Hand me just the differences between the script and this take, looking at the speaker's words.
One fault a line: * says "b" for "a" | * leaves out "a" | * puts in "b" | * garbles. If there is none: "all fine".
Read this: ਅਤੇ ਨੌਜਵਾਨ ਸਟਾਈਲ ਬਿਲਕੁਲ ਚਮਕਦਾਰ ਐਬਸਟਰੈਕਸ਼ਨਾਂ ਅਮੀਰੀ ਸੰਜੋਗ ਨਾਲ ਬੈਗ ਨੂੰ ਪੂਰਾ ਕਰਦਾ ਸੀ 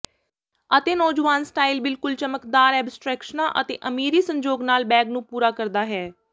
* puts in "ਅਤੇ"
* says "ਹੈ" for "ਸੀ"